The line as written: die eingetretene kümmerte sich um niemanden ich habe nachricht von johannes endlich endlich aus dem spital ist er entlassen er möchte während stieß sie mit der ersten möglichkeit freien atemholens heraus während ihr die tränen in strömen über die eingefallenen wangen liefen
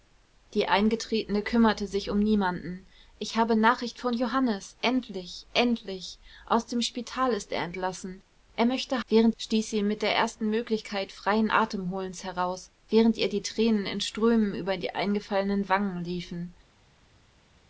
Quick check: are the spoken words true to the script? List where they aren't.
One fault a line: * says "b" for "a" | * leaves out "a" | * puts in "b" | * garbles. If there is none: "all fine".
all fine